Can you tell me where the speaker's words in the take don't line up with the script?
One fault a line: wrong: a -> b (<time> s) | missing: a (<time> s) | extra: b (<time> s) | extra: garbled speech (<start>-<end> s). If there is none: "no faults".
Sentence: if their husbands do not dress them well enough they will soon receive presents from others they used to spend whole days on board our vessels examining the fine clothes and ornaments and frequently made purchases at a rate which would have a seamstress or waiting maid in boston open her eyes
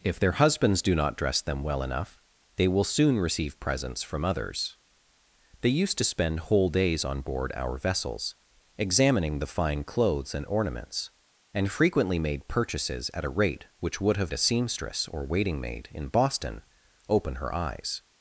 no faults